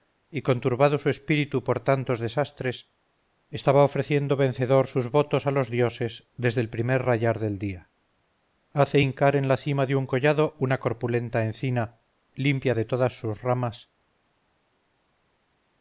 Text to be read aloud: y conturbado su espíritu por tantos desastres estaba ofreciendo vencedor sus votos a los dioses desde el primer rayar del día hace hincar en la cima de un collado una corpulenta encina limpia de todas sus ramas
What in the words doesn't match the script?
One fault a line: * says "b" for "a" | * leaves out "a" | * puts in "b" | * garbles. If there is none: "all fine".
all fine